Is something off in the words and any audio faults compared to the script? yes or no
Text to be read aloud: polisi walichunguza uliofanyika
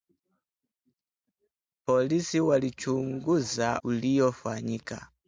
no